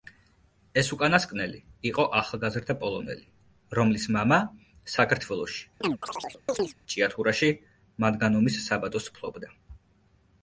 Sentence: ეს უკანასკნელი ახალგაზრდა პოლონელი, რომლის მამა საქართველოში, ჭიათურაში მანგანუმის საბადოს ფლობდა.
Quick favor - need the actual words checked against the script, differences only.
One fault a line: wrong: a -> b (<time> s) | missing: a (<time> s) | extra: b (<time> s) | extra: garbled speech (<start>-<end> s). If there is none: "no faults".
extra: იყო (1.9 s)